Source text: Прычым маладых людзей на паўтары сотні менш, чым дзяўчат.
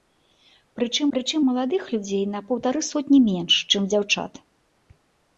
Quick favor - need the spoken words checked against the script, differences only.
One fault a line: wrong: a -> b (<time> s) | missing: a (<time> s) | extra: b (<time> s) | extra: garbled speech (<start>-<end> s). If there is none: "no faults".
extra: прычым (1.1 s)